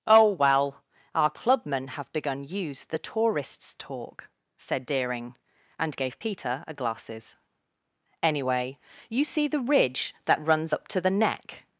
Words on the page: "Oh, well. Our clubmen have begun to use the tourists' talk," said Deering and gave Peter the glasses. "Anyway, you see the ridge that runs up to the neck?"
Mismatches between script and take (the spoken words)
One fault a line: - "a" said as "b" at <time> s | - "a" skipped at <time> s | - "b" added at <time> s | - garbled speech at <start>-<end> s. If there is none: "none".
- "to" skipped at 2.4 s
- "the" said as "a" at 6.7 s